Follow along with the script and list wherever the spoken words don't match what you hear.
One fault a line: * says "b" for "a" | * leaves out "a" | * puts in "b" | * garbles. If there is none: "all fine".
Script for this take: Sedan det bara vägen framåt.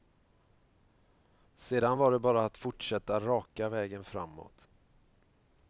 * puts in "var"
* puts in "att fortsätta raka"